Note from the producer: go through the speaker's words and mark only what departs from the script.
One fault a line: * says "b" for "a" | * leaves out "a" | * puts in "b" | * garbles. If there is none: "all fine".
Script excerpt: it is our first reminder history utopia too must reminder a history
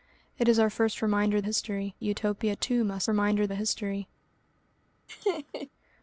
all fine